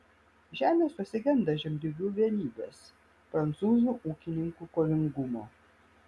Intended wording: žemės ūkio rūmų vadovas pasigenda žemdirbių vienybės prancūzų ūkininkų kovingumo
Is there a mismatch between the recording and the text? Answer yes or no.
yes